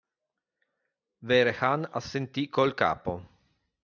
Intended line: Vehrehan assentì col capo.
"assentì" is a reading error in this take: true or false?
false